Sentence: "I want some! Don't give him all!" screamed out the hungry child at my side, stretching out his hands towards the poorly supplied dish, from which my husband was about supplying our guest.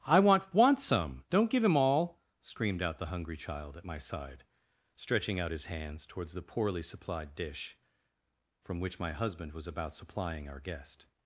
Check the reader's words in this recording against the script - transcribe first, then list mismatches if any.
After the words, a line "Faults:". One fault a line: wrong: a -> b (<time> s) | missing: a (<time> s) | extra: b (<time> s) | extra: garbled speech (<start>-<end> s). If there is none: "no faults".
"I want want some! Don't give him all!" screamed out the hungry child at my side, stretching out his hands towards the poorly supplied dish, from which my husband was about supplying our guest.
Faults:
extra: want (0.5 s)